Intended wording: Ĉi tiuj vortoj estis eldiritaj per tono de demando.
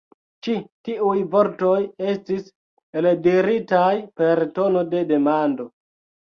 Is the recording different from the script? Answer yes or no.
no